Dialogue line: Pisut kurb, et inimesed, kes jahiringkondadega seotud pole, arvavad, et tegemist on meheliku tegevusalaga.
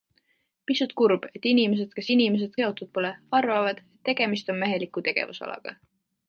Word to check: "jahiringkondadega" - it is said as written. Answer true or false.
false